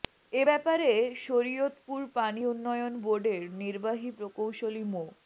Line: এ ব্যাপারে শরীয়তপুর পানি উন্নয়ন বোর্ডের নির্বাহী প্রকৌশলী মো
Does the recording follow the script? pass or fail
pass